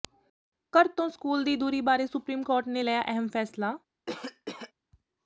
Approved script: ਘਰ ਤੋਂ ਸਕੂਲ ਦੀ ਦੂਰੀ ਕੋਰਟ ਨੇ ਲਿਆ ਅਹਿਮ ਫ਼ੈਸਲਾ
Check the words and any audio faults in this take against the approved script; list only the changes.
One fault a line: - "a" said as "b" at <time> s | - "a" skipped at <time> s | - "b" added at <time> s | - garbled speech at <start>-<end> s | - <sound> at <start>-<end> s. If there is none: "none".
- "ਬਾਰੇ ਸੁਪਰੀਮ" added at 1.8 s
- cough at 4.1-4.7 s